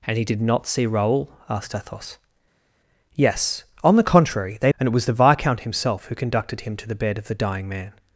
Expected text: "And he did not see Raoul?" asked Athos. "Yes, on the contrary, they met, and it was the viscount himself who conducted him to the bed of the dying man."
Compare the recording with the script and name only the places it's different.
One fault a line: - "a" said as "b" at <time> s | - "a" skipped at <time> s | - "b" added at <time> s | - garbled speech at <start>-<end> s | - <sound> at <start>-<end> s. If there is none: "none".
- "met" skipped at 4.7 s